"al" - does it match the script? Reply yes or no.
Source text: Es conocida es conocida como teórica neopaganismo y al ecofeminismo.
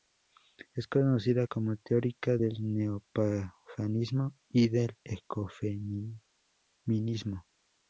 no